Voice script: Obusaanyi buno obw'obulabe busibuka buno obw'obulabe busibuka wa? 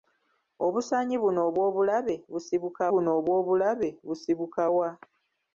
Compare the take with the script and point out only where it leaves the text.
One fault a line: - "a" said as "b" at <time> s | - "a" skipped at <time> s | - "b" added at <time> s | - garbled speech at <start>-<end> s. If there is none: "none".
none